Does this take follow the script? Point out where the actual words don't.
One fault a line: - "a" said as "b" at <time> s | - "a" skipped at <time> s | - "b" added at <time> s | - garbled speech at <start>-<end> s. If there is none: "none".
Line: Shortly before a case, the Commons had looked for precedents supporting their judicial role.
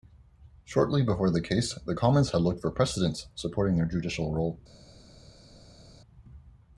- "a" said as "the" at 1.3 s